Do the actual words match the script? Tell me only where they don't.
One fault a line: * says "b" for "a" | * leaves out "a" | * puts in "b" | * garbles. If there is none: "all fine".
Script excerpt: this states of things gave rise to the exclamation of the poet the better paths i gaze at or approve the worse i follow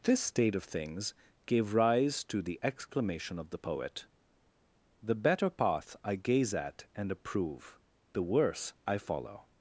* says "state" for "states"
* says "path" for "paths"
* says "and" for "or"